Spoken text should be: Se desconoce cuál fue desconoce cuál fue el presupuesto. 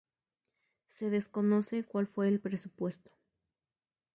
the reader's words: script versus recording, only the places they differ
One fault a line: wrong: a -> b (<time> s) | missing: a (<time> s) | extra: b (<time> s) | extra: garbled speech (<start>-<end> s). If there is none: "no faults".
missing: desconoce cuál fue (2.3 s)